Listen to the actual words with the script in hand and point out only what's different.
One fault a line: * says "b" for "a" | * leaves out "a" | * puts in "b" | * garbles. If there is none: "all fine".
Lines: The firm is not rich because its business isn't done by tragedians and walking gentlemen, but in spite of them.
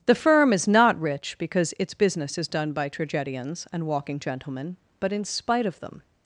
* says "is" for "isn't"